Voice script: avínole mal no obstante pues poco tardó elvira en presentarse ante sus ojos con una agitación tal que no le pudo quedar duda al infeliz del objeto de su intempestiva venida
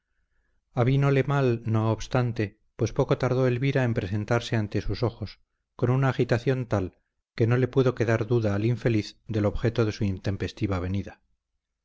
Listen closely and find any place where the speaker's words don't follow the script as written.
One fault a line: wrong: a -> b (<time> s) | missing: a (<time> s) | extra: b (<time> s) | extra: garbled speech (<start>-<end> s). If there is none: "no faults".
no faults